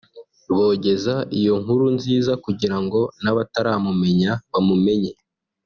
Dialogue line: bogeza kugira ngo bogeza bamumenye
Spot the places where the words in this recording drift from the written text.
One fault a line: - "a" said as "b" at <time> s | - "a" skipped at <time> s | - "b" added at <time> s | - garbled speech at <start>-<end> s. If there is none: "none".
- "iyo nkuru nziza" added at 1.4 s
- "bogeza" said as "n'abataramumenya" at 3.2 s